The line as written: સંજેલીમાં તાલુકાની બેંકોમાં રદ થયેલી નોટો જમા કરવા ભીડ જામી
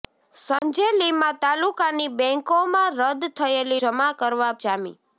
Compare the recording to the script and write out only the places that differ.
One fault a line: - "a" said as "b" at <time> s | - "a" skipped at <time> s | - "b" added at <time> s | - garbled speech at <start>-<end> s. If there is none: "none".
- "નોટો" skipped at 3.8 s
- "ભીડ" skipped at 4.5 s